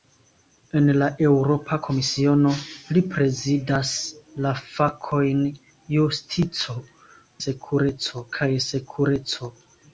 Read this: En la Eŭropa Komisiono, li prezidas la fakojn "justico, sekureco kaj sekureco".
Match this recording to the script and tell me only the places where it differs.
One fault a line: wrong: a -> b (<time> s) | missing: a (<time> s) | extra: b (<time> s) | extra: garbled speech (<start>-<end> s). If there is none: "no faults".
no faults